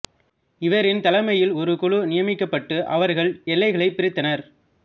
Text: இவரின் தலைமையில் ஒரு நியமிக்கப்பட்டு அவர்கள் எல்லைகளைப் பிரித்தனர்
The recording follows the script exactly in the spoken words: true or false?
false